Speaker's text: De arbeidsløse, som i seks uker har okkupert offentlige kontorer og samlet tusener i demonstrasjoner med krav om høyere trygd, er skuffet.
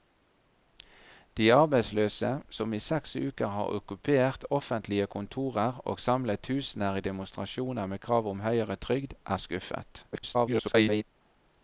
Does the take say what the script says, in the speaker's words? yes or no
no